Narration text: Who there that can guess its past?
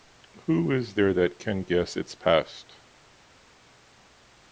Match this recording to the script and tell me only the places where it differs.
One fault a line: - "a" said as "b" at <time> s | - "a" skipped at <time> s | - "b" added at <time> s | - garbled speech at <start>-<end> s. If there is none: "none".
- "is" added at 0.7 s